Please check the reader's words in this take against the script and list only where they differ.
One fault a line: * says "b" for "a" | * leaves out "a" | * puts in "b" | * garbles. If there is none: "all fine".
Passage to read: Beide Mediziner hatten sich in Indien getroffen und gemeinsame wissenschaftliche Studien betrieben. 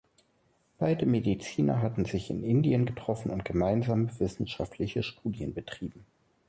all fine